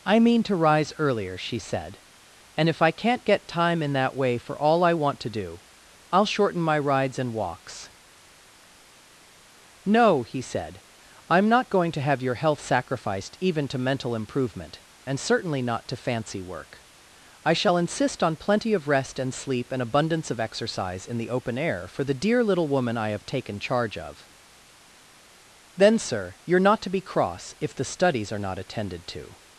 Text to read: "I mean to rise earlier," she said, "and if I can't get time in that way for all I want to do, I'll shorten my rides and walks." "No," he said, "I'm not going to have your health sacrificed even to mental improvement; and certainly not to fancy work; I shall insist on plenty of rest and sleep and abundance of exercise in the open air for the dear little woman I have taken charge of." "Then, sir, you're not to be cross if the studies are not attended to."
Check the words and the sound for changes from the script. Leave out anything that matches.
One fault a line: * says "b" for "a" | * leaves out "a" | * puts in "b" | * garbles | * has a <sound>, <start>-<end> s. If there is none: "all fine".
all fine